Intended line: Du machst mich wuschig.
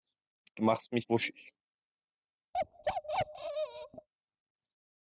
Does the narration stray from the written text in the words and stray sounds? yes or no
yes